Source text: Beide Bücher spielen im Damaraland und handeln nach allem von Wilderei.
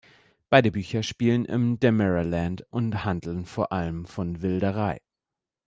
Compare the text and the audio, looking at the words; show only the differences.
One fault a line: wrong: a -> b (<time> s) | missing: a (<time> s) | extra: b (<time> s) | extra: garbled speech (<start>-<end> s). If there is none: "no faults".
wrong: nach -> vor (3.5 s)